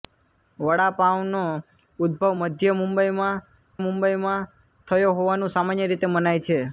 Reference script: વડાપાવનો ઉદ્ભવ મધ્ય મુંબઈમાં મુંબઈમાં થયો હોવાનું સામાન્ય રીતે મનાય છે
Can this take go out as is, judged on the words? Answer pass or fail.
pass